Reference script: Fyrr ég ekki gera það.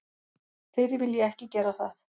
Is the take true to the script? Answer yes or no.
no